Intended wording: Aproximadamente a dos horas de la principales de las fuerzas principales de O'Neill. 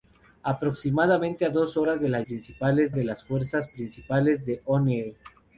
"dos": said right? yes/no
yes